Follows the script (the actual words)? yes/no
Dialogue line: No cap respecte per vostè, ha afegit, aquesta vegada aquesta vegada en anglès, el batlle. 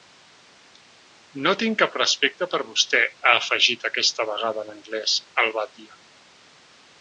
no